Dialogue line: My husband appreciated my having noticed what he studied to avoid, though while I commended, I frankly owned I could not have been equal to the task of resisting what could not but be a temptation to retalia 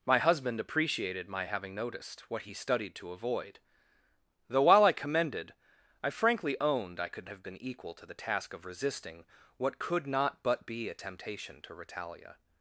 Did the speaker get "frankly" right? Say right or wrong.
right